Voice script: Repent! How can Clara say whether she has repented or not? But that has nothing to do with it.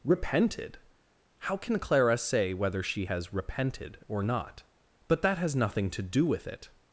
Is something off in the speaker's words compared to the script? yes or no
yes